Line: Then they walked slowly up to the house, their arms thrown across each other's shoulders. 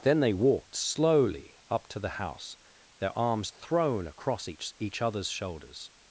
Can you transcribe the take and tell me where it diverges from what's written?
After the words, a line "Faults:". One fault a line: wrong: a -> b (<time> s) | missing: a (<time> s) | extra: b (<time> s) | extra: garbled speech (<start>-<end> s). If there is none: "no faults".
Then they walked slowly up to the house, their arms thrown across each each other's shoulders.
Faults:
extra: each (4.8 s)